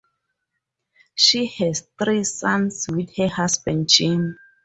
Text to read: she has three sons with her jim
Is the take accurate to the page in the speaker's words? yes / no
no